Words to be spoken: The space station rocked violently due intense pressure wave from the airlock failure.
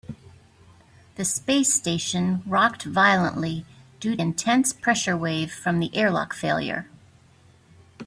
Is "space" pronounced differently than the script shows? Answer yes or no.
no